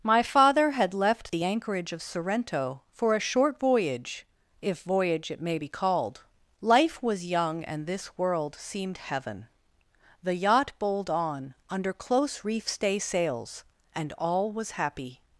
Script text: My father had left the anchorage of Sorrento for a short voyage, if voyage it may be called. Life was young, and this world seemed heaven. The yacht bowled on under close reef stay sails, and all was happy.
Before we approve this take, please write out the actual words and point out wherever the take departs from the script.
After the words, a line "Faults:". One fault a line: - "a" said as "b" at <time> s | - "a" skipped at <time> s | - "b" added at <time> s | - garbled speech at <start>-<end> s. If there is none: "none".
My father had left the anchorage of Sorrento for a short voyage, if voyage it may be called. Life was young, and this world seemed heaven. The yacht bowled on under close reef stay sails, and all was happy.
Faults:
none